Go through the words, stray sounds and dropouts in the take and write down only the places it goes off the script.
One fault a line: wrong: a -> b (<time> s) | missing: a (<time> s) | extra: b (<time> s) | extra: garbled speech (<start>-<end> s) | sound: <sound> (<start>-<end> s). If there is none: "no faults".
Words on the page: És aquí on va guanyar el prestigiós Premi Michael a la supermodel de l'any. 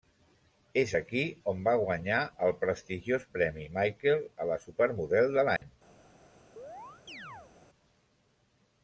sound: dropout (5.6-5.6 s)
sound: chirp (6.6-7.5 s)